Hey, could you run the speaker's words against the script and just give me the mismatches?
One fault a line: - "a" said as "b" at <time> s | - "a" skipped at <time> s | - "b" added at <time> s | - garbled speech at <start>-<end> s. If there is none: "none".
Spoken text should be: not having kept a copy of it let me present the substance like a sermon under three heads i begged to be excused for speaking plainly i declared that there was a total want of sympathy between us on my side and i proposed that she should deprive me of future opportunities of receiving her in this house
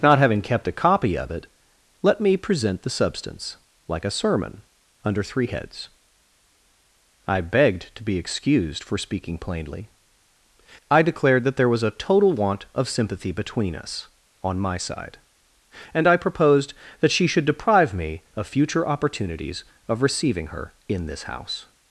none